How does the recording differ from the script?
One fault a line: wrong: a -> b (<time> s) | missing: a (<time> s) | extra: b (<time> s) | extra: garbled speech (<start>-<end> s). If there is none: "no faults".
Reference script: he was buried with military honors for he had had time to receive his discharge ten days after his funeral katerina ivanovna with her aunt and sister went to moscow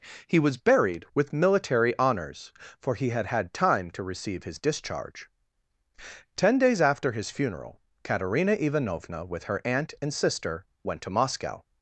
no faults